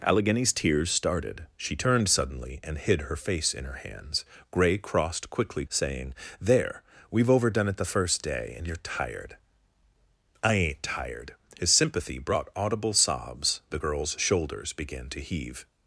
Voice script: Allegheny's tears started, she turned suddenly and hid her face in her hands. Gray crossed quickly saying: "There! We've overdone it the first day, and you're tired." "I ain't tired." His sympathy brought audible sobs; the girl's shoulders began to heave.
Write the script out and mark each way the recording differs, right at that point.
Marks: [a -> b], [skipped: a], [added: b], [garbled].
Allegheny's tears started, she turned suddenly and hid her face in her hands. Gray crossed quickly saying: "There! We've overdone it the first day, and you're tired." "I ain't tired." His sympathy brought audible sobs; the girl's shoulders began to heave.